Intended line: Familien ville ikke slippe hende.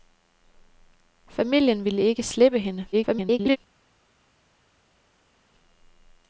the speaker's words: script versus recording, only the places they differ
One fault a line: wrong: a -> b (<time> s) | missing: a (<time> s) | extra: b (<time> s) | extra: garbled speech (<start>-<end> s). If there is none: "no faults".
extra: garbled speech (2.9-3.6 s)